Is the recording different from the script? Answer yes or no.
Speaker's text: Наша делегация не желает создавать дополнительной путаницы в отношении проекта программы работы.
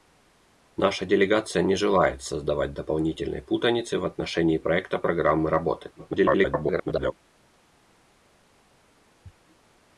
yes